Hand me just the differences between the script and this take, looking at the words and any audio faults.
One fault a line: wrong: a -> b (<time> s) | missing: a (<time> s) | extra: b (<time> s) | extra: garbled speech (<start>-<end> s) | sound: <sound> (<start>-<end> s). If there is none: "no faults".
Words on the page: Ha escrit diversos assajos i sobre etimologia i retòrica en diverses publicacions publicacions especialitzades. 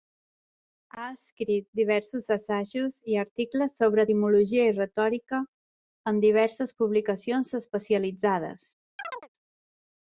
extra: articles (3.2 s)
missing: publicacions (7.5 s)
sound: chirp (9.0-9.3 s)